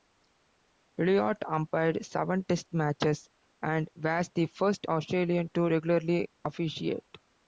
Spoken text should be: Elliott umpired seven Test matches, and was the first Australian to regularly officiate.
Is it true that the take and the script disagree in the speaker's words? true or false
false